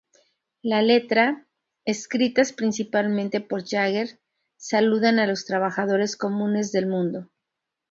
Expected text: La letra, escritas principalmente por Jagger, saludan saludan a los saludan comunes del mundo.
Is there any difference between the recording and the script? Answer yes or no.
yes